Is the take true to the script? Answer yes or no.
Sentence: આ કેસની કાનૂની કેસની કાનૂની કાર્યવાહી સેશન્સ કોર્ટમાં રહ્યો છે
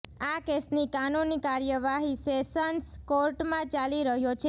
no